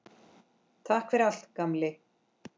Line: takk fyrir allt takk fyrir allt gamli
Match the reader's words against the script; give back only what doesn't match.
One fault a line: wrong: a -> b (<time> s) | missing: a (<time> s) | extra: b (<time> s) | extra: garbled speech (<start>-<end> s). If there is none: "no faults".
missing: takk fyrir allt (1.5 s)